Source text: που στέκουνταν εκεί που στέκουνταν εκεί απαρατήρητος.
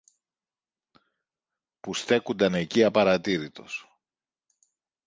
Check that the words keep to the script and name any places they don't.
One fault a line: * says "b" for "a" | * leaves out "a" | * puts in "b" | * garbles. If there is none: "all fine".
* leaves out "που στέκουνταν εκεί"